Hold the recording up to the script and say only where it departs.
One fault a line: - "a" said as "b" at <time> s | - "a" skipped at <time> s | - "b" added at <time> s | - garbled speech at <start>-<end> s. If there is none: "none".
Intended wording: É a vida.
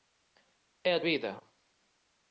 none